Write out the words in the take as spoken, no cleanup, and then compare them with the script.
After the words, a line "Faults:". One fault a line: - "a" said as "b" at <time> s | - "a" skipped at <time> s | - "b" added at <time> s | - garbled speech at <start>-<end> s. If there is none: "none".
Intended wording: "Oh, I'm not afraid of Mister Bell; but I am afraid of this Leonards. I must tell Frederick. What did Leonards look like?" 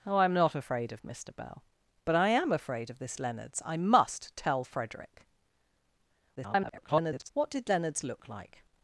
"Oh, I'm not afraid of Mister Bell; but I am afraid of this Leonards. I must tell Frederick. [garbled] What did Leonards look like?"
Faults:
- garbled speech at 6.4-7.3 s